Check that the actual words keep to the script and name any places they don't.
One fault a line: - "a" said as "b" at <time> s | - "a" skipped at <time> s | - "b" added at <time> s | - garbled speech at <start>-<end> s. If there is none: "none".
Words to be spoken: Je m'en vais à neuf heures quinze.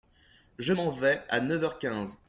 none